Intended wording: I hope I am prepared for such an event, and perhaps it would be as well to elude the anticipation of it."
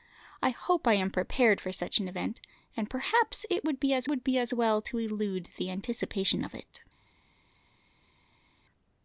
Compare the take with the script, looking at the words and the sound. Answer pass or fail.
fail